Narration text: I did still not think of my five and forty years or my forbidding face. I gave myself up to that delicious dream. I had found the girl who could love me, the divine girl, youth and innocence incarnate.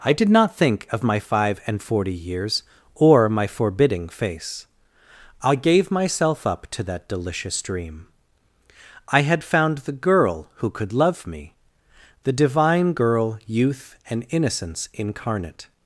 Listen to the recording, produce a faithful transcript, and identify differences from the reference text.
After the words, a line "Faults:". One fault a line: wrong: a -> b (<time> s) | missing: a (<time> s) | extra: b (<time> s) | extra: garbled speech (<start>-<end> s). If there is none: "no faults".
I did not think of my five and forty years or my forbidding face. I gave myself up to that delicious dream. I had found the girl who could love me, the divine girl, youth and innocence incarnate.
Faults:
missing: still (0.3 s)